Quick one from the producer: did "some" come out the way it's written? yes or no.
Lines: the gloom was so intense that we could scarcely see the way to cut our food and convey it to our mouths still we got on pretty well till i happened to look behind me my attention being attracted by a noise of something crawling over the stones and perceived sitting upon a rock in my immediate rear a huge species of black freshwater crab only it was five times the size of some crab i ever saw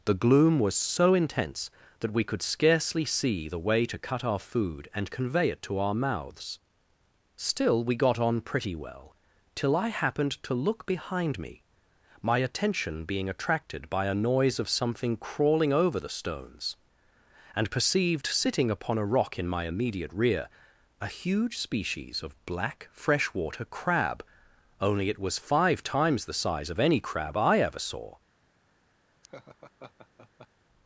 no